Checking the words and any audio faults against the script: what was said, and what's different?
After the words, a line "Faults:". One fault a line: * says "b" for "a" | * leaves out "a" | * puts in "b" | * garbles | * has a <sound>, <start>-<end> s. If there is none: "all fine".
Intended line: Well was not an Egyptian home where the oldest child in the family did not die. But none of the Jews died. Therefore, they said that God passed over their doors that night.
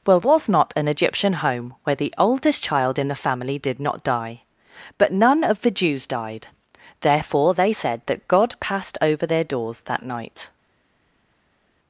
Well was not an Egyptian home where the oldest child in the family did not die. But none of the Jews died. Therefore, they said that God passed over their doors that night.
Faults:
all fine